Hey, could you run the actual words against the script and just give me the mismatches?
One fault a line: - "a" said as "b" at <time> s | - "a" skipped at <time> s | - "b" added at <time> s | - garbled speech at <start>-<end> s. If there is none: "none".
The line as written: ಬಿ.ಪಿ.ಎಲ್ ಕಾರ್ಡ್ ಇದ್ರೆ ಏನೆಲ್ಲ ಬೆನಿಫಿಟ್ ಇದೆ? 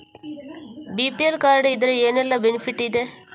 none